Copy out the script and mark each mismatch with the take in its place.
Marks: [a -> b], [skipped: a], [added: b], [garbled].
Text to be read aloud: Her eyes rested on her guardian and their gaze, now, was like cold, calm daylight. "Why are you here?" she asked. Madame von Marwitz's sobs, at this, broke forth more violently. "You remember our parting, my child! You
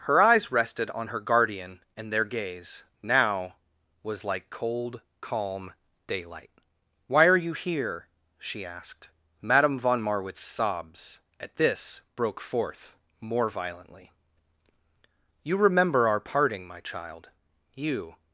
Her eyes rested on her guardian and their gaze, now, was like cold, calm daylight. "Why are you here?" she asked. Madame von Marwitz's sobs, at this, broke forth more violently. "You remember our parting, my child! You